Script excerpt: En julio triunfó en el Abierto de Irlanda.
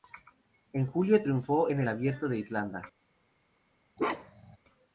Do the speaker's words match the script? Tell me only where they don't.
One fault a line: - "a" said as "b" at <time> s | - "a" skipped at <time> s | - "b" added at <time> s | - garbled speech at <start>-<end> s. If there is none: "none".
none